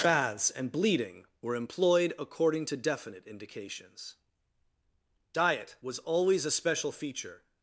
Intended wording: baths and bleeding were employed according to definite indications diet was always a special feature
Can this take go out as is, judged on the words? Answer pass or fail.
pass